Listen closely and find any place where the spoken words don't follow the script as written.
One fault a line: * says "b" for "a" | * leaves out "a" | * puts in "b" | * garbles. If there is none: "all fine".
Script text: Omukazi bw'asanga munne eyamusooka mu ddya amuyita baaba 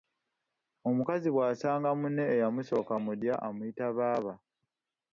all fine